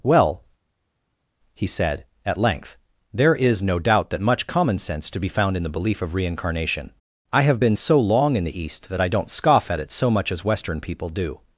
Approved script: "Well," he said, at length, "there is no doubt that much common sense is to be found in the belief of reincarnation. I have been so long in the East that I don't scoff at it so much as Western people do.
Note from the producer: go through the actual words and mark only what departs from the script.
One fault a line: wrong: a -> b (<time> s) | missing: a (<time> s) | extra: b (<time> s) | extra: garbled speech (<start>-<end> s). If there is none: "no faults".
missing: is (5.1 s)